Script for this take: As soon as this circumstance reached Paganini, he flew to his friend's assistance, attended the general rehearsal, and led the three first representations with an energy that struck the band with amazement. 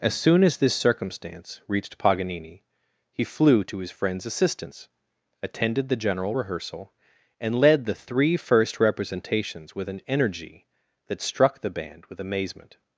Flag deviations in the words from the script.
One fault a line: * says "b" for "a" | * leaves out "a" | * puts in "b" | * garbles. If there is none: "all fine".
all fine